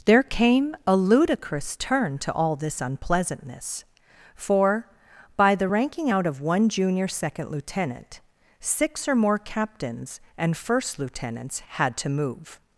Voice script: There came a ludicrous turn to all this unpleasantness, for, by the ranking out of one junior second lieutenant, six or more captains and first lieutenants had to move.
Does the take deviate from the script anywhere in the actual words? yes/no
no